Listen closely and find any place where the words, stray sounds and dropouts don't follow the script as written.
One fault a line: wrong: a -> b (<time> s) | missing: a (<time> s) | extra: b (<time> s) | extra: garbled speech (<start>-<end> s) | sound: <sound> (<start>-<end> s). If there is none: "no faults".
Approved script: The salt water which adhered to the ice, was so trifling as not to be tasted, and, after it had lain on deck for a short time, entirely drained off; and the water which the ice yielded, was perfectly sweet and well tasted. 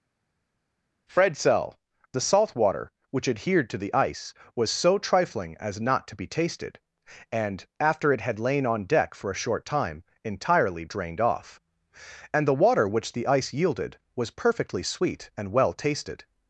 extra: fred sell (1.1 s)